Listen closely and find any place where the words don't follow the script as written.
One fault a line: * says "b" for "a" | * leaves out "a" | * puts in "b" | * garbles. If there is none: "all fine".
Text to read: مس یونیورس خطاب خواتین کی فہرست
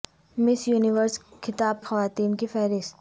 all fine